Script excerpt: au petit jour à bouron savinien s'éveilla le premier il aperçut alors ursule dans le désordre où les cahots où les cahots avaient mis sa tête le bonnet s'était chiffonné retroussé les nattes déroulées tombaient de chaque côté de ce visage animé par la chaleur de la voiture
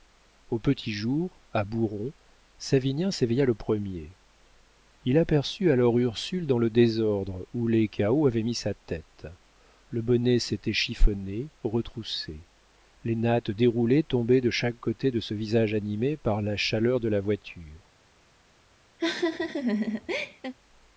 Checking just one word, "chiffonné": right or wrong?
right